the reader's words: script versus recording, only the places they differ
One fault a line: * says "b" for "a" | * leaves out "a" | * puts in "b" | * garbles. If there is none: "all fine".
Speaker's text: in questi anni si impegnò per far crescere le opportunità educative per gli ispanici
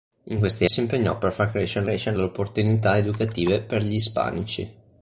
* leaves out "anni"
* puts in "crescere"